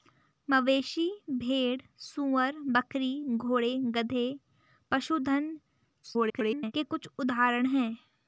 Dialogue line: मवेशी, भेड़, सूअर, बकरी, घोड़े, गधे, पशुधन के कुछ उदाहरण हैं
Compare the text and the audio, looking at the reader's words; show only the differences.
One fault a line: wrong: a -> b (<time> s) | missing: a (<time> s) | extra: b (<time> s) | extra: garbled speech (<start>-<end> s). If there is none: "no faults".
extra: garbled speech (6.0-6.7 s)